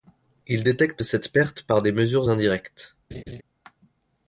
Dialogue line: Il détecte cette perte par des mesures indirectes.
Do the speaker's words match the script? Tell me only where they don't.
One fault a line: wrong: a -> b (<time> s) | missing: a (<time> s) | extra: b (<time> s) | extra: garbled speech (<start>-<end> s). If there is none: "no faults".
no faults